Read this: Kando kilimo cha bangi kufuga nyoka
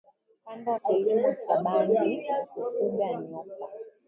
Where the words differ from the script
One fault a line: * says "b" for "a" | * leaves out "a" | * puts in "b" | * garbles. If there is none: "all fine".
all fine